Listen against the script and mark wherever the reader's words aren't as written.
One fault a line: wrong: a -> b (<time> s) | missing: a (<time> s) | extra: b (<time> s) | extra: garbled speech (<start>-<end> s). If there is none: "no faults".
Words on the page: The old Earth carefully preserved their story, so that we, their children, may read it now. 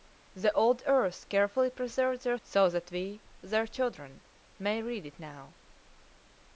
missing: story (2.4 s)